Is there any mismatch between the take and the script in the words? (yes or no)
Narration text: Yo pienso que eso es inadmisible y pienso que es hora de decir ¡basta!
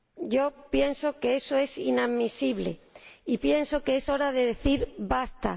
no